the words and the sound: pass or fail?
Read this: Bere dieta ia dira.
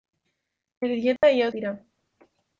fail